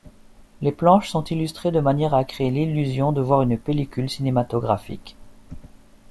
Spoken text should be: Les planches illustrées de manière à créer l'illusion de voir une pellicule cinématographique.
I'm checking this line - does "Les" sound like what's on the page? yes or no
yes